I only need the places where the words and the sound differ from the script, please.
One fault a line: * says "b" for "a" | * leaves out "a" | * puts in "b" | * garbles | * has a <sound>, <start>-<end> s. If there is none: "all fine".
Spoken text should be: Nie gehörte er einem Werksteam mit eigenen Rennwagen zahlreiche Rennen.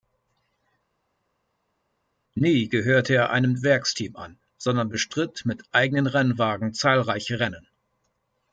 * puts in "an sondern bestritt"